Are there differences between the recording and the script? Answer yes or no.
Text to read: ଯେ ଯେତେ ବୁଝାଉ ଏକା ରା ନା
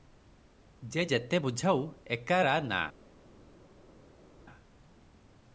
no